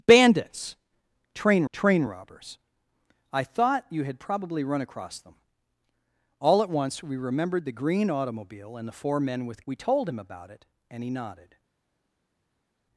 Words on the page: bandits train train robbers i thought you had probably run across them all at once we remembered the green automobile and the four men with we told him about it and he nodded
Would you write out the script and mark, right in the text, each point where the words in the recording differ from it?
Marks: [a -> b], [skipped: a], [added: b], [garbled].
bandits train train robbers i thought you had probably run across them all at once we remembered the green automobile and the four men with we told him about it and he nodded